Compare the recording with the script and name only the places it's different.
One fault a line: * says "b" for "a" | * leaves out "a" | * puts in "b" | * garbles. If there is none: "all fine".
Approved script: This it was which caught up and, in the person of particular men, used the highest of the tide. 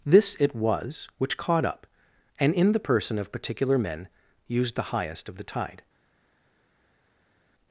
all fine